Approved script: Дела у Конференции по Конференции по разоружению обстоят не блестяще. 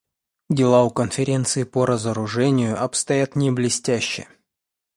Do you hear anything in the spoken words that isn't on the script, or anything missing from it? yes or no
yes